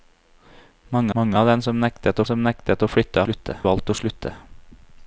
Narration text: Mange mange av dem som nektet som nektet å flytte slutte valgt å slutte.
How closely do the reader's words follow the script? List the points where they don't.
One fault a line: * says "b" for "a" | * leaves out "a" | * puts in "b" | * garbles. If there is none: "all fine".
all fine